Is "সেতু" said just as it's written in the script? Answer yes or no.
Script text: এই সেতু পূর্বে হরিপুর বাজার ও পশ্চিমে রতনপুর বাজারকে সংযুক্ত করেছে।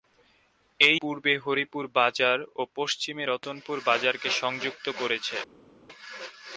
no